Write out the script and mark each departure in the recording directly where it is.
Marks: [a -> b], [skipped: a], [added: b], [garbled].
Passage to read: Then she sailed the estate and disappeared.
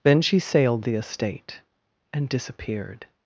Then she sailed the estate and disappeared.